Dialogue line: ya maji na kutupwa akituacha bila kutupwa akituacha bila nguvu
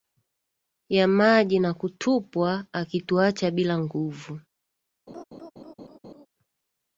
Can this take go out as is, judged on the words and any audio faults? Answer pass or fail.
fail